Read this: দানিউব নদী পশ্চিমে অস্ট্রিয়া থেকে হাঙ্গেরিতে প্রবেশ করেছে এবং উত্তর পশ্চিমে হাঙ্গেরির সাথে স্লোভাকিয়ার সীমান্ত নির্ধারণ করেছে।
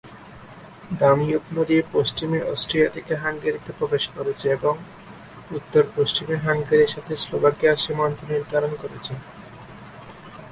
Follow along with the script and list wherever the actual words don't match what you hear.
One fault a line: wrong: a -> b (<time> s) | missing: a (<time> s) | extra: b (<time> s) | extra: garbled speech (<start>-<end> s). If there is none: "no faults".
no faults